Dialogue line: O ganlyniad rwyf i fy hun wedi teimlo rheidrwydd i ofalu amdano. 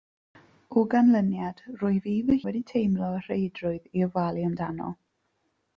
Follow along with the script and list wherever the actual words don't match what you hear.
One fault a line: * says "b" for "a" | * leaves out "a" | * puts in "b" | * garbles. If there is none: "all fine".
* leaves out "hun"